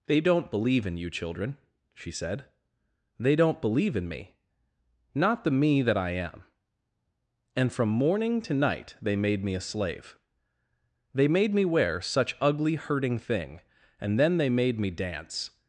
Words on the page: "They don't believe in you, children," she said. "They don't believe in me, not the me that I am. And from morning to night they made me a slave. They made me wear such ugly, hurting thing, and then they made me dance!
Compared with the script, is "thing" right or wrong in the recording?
right